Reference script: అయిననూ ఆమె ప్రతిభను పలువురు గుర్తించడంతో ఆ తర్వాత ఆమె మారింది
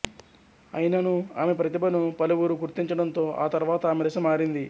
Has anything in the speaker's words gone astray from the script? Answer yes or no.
yes